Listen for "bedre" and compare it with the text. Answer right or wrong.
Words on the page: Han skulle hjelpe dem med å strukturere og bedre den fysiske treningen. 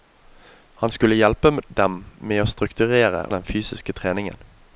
wrong